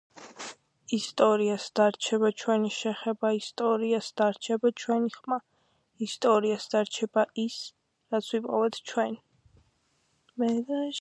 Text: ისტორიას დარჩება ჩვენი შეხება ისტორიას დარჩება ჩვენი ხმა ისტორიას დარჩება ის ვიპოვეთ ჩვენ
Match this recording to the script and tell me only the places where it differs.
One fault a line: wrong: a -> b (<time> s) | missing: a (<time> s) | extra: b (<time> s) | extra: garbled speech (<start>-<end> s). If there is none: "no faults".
extra: რაც (8.2 s)